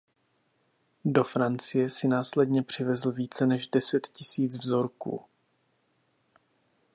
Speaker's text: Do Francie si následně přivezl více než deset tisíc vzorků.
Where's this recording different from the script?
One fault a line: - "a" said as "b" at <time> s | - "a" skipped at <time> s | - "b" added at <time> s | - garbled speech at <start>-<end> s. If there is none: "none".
none